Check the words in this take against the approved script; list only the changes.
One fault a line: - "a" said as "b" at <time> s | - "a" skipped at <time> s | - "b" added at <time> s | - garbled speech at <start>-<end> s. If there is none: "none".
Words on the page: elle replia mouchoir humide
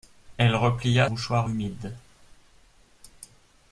none